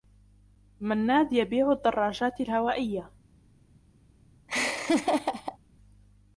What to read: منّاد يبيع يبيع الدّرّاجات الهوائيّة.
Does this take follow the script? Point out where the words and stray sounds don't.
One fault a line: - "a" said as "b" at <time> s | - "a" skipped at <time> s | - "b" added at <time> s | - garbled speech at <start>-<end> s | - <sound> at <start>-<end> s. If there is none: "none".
- "يبيع" skipped at 1.7 s
- laugh at 4.5-5.6 s